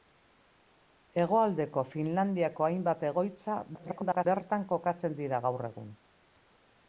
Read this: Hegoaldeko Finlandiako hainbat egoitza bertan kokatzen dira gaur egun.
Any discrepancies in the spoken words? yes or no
yes